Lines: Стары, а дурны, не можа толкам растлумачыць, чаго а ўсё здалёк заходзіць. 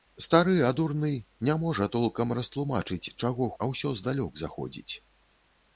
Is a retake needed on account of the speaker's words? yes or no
no